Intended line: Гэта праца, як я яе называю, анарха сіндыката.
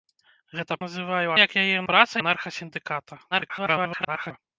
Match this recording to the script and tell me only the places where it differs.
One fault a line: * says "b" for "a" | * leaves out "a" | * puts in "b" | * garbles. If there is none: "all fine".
* says "называю" for "праца"
* says "праца" for "называю"
* garbles